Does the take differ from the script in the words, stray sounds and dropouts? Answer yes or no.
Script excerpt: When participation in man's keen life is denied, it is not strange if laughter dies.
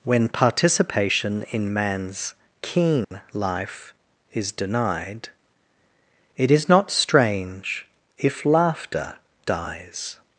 yes